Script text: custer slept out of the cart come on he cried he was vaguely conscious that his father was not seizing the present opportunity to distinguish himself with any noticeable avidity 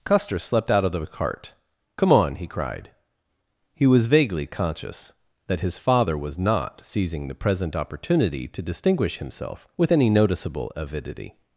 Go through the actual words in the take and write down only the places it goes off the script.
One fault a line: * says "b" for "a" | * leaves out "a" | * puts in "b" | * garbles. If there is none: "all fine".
all fine